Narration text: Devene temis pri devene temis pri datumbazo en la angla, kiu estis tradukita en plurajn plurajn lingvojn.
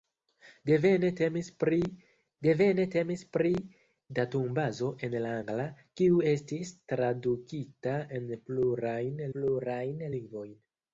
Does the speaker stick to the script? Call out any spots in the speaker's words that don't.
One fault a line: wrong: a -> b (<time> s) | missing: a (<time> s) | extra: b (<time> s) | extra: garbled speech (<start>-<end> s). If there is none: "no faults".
no faults